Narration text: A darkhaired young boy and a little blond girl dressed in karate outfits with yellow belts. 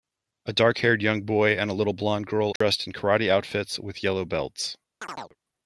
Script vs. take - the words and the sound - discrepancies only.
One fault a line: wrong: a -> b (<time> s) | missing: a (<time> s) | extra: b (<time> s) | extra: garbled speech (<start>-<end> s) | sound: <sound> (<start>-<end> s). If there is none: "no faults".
sound: dropout (2.6-2.6 s)
sound: chirp (5.0-5.4 s)